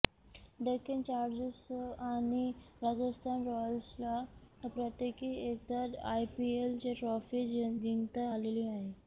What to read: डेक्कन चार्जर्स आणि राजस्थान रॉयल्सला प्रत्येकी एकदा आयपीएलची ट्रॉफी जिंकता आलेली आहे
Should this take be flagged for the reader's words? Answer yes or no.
no